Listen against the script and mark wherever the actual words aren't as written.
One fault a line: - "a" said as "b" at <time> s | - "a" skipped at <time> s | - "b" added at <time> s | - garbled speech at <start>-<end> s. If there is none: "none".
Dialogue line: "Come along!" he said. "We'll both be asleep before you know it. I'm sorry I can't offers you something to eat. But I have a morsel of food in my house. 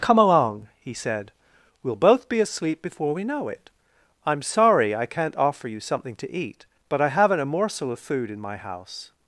- "you" said as "we" at 3.1 s
- "offers" said as "offer" at 5.3 s
- "have" said as "haven't" at 7.1 s